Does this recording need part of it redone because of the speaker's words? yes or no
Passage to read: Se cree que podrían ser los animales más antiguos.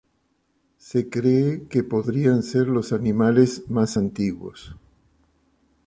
no